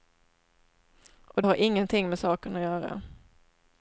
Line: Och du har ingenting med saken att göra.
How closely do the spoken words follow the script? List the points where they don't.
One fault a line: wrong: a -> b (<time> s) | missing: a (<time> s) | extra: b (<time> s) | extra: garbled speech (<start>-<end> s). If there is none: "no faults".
missing: du (1.4 s)